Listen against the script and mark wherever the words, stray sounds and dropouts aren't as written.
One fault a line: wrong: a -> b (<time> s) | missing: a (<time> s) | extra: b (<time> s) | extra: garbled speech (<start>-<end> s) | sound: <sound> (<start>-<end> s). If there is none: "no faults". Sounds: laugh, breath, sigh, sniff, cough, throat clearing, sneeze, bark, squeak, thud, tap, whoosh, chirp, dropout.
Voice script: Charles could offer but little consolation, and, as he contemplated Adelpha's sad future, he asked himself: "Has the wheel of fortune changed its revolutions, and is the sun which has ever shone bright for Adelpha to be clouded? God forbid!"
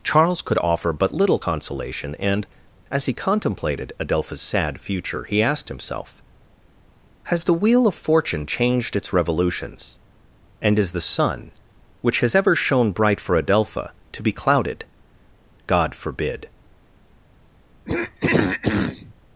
sound: throat clearing (17.9-19.1 s)